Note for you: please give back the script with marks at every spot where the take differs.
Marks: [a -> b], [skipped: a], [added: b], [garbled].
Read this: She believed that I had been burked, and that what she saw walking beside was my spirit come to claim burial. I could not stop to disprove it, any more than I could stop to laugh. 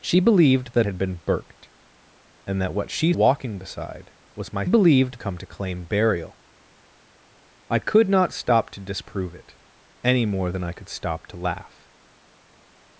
She believed that [skipped: I] had been burked, and that what she [skipped: saw] walking beside was my [spirit -> believed] come to claim burial. I could not stop to disprove it, any more than I could stop to laugh.